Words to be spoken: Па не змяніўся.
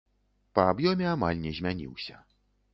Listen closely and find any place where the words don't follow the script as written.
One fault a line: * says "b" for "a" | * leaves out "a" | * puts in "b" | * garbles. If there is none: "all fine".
* puts in "аб'ёме амаль"